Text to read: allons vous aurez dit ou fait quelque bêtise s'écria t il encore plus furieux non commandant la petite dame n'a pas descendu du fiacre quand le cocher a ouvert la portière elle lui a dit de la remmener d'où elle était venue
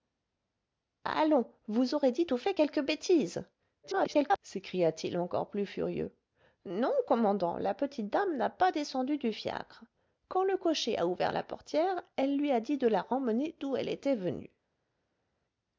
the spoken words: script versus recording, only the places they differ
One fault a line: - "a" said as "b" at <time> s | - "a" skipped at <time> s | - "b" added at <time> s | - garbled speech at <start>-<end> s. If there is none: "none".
- garbled speech at 3.8-4.4 s